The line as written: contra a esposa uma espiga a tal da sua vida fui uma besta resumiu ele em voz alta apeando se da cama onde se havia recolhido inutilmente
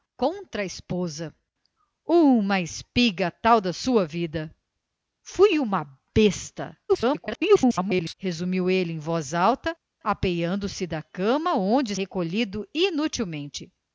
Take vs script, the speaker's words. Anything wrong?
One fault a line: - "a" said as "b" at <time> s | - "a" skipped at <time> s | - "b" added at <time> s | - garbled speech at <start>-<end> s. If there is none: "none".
- garbled speech at 6.9-8.1 s
- "se havia" skipped at 12.0 s